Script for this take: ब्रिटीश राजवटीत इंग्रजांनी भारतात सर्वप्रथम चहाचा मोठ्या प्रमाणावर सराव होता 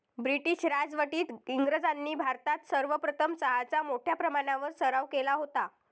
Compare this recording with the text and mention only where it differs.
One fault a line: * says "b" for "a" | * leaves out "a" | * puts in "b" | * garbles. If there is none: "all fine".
* puts in "केला"